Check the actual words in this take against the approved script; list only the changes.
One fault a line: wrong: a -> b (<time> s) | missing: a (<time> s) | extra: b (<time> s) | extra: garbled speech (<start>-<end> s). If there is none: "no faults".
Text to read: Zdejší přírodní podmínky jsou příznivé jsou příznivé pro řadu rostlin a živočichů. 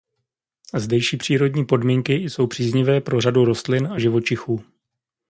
missing: jsou příznivé (3.0 s)